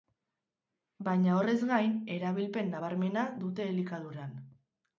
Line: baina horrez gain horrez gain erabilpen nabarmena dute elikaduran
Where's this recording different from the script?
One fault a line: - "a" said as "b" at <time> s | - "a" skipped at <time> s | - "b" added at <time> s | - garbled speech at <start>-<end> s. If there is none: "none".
- "horrez gain" skipped at 1.9 s